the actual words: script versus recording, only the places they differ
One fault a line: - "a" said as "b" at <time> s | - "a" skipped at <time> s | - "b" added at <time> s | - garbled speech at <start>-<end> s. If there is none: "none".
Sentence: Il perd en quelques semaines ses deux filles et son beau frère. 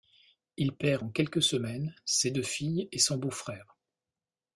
none